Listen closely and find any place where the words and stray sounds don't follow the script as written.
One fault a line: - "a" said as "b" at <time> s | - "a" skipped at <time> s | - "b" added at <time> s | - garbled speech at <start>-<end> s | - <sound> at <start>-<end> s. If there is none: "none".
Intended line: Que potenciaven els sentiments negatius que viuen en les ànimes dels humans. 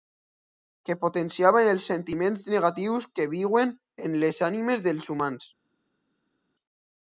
none